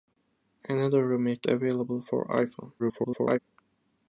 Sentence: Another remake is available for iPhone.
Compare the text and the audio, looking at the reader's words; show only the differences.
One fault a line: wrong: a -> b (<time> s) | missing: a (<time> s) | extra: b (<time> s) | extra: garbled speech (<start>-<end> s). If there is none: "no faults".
missing: is (1.5 s)
extra: garbled speech (2.8-3.4 s)